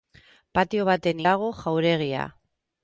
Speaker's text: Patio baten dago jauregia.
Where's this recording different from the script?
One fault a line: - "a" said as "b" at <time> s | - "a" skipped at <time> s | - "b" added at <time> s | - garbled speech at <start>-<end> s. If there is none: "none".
none